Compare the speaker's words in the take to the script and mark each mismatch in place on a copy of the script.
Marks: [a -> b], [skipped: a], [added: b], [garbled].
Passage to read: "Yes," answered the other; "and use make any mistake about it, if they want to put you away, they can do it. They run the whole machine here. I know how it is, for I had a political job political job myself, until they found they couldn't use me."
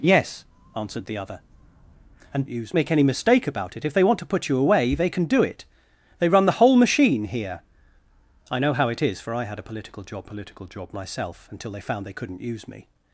"Yes," answered the other; "and use make any mistake about it, if they want to put you away, they can do it. They run the whole machine here. I know how it is, for I had a political job political job myself, until they found they couldn't use me."